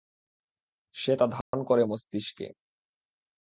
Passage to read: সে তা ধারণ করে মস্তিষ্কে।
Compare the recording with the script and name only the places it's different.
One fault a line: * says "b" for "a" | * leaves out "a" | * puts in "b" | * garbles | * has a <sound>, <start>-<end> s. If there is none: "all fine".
* has a dropout, 1.4-1.5 s